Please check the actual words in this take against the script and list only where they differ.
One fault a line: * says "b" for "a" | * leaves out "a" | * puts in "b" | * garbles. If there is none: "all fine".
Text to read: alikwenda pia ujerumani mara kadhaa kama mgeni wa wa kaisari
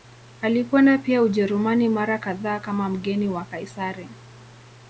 * leaves out "wa"